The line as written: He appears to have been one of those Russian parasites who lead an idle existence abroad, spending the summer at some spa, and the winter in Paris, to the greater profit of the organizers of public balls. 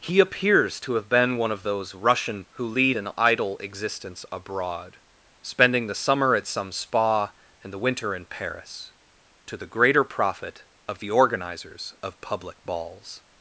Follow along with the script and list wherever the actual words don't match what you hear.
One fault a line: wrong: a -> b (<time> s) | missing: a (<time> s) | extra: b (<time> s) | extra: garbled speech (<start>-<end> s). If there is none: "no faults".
missing: parasites (2.4 s)